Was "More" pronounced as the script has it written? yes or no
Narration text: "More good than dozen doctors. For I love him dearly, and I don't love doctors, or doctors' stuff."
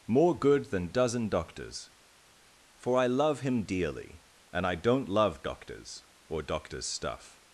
yes